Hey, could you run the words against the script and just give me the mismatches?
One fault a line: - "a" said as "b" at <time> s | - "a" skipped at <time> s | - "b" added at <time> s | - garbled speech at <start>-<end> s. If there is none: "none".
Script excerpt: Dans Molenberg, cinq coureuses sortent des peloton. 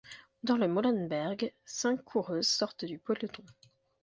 - "le" added at 0.6 s
- "des" said as "du" at 2.8 s